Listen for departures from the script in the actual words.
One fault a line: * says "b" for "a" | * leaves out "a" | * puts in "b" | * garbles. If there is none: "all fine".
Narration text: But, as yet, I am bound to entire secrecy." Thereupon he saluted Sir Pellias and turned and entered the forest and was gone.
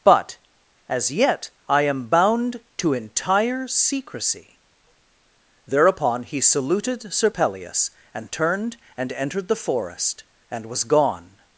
all fine